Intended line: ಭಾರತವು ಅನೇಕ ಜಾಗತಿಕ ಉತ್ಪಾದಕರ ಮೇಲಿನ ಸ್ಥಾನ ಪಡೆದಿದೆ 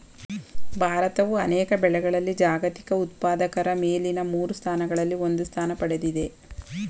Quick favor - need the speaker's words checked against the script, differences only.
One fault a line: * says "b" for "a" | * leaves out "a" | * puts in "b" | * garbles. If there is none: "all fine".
* puts in "ಬೆಳೆಗಳಲ್ಲಿ"
* puts in "ಮೂರು ಸ್ಥಾನಗಳಲ್ಲಿ ಒಂದು"